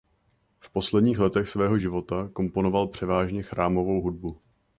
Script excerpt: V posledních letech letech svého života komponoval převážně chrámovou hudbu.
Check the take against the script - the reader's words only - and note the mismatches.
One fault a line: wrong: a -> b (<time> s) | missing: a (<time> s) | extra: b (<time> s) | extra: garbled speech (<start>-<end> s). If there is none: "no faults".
missing: letech (1.5 s)